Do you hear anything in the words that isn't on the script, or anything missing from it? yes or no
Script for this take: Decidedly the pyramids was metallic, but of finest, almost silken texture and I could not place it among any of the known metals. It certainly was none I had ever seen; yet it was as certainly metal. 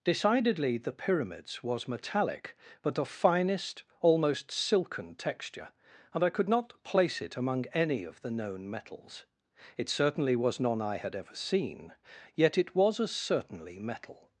no